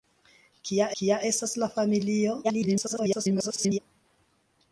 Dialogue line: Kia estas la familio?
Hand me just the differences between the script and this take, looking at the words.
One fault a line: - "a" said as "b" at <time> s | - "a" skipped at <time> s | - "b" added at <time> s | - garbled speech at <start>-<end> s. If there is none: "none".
- "kia" added at 1.0 s
- garbled speech at 2.4-3.8 s